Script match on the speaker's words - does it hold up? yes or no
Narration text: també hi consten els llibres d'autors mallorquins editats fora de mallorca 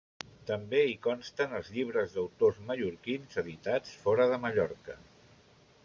yes